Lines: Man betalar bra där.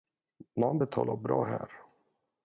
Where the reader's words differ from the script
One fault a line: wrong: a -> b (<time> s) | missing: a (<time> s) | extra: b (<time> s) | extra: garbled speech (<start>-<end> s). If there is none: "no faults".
wrong: där -> här (1.4 s)